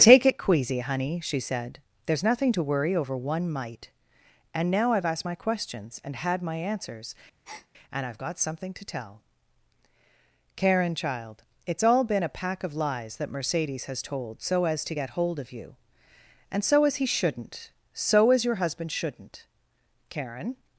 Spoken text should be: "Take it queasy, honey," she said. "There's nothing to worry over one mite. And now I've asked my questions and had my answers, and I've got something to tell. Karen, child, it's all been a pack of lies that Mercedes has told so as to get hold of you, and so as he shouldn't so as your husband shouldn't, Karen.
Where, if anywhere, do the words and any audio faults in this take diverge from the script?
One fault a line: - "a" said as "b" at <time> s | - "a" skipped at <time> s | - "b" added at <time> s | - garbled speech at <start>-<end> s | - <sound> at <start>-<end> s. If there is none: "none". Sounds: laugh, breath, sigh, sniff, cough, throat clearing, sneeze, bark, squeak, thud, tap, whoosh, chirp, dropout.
- breath at 7.4-7.7 s